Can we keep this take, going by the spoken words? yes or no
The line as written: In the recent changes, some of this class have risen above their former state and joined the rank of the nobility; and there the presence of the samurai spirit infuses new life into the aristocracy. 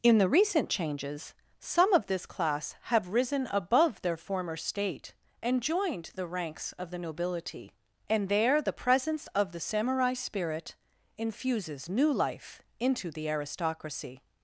no